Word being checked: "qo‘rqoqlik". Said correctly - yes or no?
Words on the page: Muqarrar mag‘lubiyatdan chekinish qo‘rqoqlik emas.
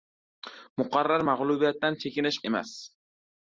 no